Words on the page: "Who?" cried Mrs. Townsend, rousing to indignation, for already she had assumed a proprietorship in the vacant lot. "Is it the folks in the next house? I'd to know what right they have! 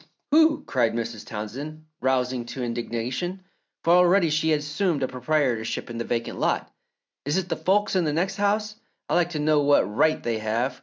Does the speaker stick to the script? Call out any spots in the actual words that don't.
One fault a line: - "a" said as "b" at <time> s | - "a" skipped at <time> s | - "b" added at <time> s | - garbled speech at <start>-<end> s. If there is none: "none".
- "like" added at 9.1 s